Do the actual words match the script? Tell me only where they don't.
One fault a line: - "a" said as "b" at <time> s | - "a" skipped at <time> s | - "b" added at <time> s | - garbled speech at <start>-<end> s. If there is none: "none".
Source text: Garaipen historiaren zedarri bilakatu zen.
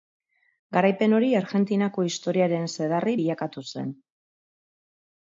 - "hori Argentinako" added at 1.2 s